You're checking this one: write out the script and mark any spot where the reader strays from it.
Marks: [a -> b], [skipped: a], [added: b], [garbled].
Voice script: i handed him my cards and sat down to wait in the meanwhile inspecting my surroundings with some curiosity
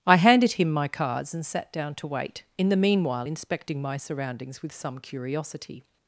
i handed him my cards and sat down to wait in the meanwhile inspecting my surroundings with some curiosity